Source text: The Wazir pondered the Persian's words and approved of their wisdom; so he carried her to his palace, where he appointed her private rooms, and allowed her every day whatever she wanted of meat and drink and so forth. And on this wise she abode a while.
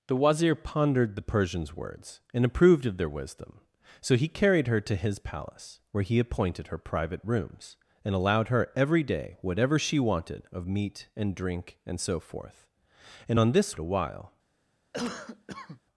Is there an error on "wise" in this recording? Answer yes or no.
yes